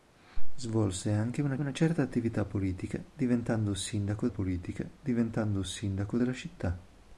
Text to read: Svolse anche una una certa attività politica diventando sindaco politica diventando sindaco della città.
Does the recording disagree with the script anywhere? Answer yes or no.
no